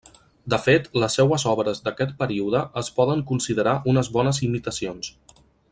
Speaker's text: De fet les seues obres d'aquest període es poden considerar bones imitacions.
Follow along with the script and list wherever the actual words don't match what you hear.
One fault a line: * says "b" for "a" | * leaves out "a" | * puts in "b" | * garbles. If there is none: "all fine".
* puts in "unes"